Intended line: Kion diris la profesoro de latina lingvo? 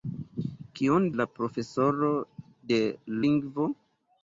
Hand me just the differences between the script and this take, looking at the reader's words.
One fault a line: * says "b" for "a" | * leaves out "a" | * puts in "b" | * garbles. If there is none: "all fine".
* leaves out "diris"
* leaves out "latina"